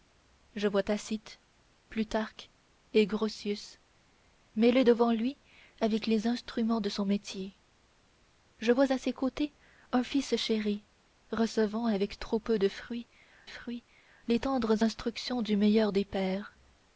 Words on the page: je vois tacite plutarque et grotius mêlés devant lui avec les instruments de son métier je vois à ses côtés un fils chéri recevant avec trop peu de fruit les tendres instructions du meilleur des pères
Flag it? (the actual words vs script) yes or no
yes